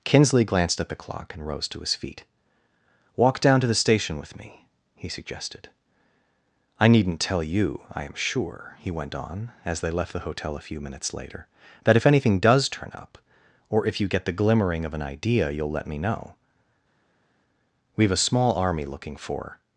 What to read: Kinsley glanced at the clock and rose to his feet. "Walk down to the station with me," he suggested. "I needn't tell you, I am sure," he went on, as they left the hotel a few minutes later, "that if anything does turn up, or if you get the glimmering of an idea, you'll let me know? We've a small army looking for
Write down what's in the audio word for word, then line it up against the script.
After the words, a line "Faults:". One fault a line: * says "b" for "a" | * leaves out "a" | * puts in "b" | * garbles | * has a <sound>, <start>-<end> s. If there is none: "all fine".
Kinsley glanced at the clock and rose to his feet. "Walk down to the station with me," he suggested. "I needn't tell you, I am sure," he went on, as they left the hotel a few minutes later, "that if anything does turn up, or if you get the glimmering of an idea, you'll let me know? We've a small army looking for
Faults:
all fine